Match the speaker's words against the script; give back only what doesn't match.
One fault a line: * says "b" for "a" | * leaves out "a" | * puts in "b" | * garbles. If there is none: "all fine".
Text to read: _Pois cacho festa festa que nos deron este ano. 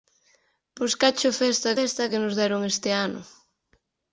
all fine